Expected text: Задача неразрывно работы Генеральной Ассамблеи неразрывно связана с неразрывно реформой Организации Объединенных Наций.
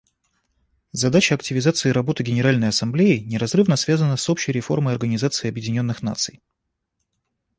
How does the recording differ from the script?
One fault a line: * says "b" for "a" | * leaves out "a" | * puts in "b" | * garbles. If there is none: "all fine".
* says "активизации" for "неразрывно"
* says "общей" for "неразрывно"